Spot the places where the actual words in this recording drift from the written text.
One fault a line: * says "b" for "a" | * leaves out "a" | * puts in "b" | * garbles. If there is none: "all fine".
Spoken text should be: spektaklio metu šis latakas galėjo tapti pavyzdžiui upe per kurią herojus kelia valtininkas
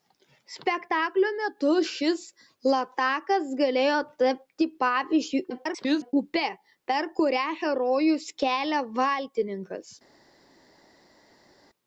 * garbles